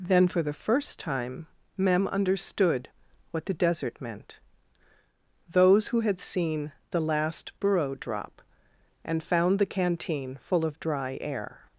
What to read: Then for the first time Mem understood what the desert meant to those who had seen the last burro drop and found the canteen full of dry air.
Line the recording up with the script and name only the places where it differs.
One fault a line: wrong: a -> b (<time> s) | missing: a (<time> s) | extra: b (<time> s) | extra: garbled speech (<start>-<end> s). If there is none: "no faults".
missing: to (4.4 s)